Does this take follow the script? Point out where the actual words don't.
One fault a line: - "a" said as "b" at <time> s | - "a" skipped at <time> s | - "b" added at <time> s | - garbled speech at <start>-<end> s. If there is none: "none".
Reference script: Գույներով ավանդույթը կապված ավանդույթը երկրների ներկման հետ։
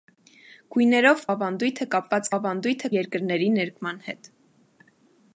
none